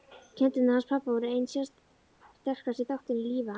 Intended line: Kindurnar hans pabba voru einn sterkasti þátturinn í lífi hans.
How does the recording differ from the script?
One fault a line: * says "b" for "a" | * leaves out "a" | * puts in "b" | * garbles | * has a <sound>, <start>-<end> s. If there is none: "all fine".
* has a dropout, 1.8-1.9 s